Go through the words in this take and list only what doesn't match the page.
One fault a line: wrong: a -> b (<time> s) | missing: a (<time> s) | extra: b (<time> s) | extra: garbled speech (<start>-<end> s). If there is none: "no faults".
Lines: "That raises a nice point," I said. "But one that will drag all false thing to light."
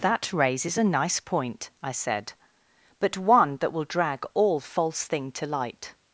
no faults